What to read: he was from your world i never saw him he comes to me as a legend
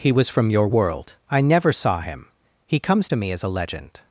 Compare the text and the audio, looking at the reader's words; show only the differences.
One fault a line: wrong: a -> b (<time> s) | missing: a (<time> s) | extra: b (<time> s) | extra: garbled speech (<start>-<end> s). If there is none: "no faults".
no faults